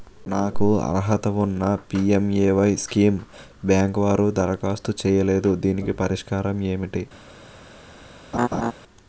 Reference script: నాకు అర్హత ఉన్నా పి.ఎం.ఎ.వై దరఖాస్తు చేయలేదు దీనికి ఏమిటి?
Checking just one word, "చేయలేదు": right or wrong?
right